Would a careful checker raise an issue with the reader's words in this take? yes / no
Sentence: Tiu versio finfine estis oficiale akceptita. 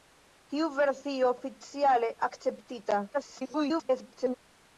yes